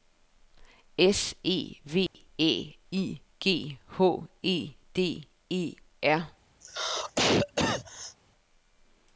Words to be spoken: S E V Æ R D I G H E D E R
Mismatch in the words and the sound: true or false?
true